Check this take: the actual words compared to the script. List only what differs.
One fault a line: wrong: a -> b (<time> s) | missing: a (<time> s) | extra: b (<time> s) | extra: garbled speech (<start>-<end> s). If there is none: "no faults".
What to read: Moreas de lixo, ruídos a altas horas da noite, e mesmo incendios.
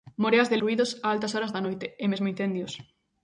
missing: lixo (0.6 s)